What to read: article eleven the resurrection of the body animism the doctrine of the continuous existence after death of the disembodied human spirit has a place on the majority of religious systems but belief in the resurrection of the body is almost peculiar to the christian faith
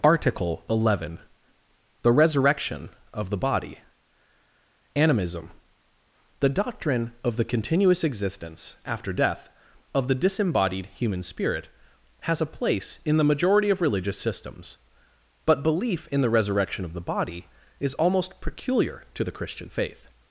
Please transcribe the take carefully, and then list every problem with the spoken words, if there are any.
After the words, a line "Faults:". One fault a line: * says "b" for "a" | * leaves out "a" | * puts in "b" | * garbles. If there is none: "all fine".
article eleven the resurrection of the body animism the doctrine of the continuous existence after death of the disembodied human spirit has a place in the majority of religious systems but belief in the resurrection of the body is almost peculiar to the christian faith
Faults:
* says "in" for "on"